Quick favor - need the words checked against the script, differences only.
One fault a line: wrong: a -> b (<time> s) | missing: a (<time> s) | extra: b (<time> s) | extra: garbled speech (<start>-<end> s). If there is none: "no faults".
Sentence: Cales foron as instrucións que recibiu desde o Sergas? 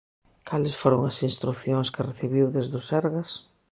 no faults